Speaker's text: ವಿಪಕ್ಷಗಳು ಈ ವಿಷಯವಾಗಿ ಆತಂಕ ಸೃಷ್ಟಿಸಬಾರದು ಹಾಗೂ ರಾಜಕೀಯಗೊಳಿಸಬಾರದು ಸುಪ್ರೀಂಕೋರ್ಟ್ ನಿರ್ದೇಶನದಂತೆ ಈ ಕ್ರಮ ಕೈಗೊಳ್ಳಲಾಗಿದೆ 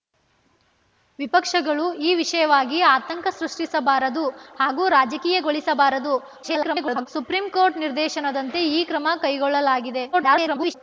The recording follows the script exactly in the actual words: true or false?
false